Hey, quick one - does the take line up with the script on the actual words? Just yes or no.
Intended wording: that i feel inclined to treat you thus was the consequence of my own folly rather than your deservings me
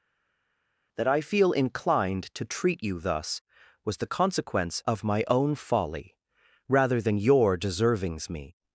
yes